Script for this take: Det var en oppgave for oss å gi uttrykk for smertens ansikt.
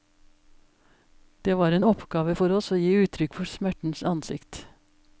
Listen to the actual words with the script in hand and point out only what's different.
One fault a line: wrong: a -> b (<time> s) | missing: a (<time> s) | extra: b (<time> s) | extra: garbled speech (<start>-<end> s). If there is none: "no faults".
no faults